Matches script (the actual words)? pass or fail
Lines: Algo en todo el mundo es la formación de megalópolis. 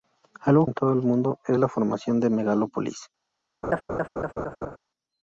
pass